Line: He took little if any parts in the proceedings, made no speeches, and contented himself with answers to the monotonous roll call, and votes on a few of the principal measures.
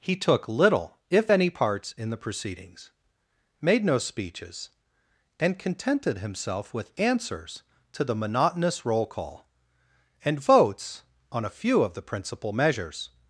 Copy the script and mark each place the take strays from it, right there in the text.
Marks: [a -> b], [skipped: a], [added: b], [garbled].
He took little if any parts in the proceedings, made no speeches, and contented himself with answers to the monotonous roll call, and votes on a few of the principal measures.